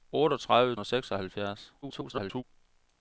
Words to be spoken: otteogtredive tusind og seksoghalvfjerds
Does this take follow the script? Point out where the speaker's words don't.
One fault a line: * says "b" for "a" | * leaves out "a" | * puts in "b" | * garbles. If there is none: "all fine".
* leaves out "tusind"
* garbles